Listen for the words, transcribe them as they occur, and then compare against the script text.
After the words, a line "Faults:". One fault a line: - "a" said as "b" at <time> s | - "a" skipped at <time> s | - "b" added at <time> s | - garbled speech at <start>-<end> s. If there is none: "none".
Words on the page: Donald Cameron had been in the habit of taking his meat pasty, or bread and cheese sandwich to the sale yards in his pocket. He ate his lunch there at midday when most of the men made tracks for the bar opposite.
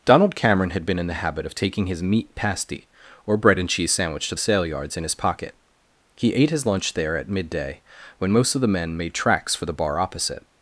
Donald Cameron had been in the habit of taking his meat pasty, or bread and cheese sandwich to sale yards in his pocket. He ate his lunch there at midday when most of the men made tracks for the bar opposite.
Faults:
- "the" skipped at 4.3 s